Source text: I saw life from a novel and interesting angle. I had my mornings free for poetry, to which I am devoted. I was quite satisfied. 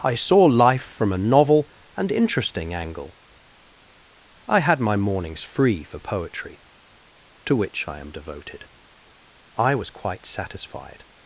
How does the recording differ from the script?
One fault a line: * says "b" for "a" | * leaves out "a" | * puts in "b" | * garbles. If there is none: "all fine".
all fine